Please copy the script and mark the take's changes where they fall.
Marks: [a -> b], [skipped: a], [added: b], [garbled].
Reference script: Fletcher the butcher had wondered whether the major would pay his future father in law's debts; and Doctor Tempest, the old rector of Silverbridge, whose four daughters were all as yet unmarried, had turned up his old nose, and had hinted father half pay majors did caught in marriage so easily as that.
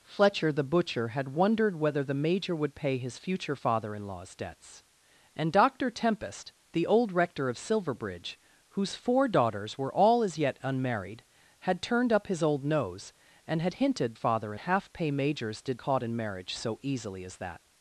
Fletcher the butcher had wondered whether the major would pay his future father in law's debts; and Doctor Tempest, the old rector of Silverbridge, whose four daughters were all as yet unmarried, had turned up his old nose, and had hinted father half pay majors did caught in marriage so easily as that.